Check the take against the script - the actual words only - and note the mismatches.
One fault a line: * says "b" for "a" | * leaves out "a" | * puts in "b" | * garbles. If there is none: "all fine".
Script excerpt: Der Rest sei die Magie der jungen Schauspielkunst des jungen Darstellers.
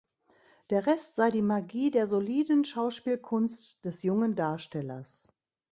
* says "soliden" for "jungen"